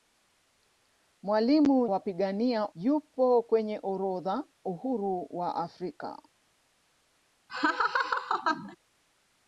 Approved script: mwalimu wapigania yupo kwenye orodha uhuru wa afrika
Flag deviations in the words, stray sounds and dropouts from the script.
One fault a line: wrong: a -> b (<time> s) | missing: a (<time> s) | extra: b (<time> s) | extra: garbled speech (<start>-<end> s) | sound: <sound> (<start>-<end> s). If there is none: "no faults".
sound: laugh (7.5-8.8 s)